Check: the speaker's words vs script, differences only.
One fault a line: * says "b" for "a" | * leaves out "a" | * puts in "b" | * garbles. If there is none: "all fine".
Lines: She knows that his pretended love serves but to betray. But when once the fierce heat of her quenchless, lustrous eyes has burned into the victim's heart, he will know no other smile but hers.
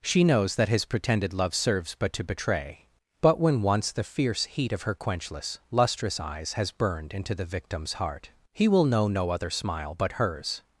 all fine